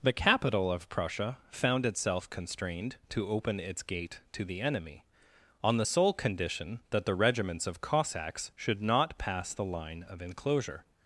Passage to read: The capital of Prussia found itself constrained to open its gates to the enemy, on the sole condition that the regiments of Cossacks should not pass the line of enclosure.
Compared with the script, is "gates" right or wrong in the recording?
wrong